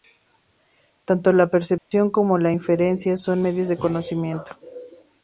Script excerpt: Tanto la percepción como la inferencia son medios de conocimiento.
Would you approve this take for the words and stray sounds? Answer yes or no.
no